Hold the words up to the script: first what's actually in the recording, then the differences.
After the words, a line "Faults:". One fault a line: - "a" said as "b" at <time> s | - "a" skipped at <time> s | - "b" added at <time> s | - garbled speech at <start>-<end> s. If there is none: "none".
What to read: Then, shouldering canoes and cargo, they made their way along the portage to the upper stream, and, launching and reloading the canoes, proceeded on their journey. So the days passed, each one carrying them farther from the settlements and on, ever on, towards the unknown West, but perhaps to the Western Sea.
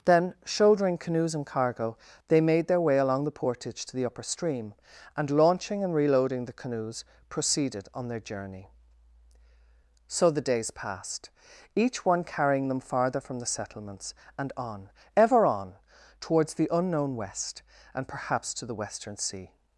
Then, shouldering canoes and cargo, they made their way along the portage to the upper stream, and, launching and reloading the canoes, proceeded on their journey. So the days passed, each one carrying them farther from the settlements and on, ever on, towards the unknown West, and perhaps to the Western Sea.
Faults:
- "but" said as "and" at 17.9 s